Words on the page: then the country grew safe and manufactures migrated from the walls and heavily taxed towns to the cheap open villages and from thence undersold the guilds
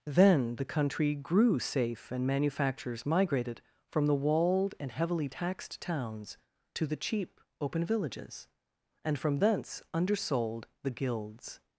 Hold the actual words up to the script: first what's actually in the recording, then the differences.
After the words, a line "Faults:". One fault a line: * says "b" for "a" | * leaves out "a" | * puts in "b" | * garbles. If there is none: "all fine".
then the country grew safe and manufactures migrated from the walled and heavily taxed towns to the cheap open villages and from thence undersold the guilds
Faults:
* says "walled" for "walls"